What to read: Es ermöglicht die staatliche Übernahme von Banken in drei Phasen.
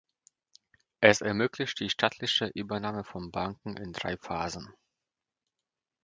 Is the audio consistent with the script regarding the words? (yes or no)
yes